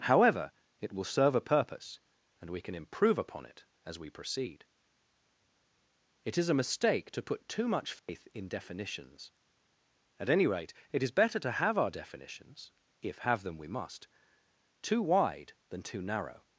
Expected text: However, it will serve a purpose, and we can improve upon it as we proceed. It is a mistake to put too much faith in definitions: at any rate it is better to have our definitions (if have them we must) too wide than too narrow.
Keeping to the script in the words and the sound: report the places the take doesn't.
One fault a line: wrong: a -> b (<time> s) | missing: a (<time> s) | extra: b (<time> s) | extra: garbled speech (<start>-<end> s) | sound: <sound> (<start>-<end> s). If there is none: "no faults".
sound: dropout (8.0-8.1 s)